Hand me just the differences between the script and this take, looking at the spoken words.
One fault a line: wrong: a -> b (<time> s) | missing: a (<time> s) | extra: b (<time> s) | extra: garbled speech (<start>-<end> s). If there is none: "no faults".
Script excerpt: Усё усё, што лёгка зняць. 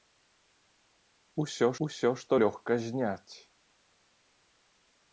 no faults